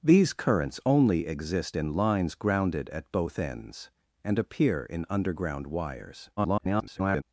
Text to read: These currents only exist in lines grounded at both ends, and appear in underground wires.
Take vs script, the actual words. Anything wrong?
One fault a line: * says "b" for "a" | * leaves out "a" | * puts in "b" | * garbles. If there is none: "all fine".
* garbles